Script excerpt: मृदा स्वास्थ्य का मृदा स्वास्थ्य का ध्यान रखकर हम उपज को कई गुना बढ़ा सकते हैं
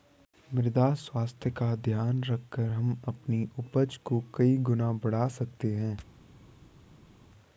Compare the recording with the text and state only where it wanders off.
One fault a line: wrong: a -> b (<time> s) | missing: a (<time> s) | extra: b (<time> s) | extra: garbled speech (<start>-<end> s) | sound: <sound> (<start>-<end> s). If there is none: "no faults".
missing: मृदा स्वास्थ्य का (1.8 s)
extra: अपनी (3.1 s)